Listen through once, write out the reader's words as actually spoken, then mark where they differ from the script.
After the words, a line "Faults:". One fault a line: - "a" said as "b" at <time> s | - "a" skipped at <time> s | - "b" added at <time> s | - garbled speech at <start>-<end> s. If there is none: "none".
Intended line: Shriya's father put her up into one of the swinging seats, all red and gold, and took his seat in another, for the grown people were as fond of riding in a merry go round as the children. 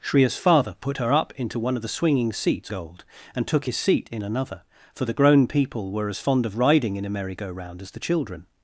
Shriya's father put her up into one of the swinging seats, gold, and took his seat in another, for the grown people were as fond of riding in a merry go round as the children.
Faults:
- "all red and" skipped at 2.7 s